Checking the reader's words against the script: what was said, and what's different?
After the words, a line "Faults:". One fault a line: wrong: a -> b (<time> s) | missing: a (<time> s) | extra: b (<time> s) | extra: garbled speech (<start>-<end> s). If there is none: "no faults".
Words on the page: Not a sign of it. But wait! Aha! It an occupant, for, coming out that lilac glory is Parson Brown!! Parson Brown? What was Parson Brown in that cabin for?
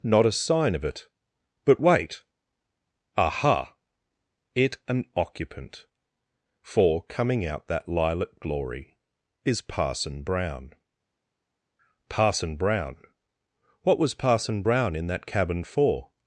Not a sign of it. But wait! Aha! It an occupant, for, coming out that lilac glory is Parson Brown!! Parson Brown? What was Parson Brown in that cabin for?
Faults:
no faults